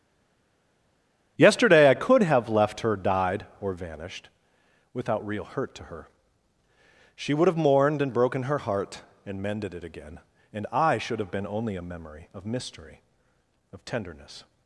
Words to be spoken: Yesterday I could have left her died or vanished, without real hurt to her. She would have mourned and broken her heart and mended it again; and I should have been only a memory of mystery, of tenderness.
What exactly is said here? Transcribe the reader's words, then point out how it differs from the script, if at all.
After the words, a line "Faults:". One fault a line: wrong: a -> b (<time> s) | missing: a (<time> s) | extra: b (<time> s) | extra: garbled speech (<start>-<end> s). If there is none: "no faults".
Yesterday I could have left her died or vanished, without real hurt to her. She would have mourned and broken her heart and mended it again; and I should have been only a memory of mystery, of tenderness.
Faults:
no faults